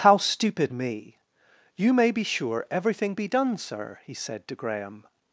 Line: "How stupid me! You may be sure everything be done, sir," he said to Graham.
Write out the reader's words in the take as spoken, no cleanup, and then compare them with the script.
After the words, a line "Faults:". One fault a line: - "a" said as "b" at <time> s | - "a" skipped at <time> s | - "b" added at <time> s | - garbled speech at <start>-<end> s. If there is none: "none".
"How stupid me! You may be sure everything be done, sir," he said to Graham.
Faults:
none